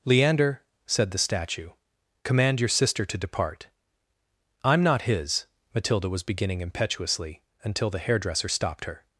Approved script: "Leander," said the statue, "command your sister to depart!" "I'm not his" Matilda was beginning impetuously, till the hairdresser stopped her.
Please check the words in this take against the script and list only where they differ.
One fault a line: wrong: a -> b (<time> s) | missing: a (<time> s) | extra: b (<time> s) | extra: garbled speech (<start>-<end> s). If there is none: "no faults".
wrong: till -> until (7.6 s)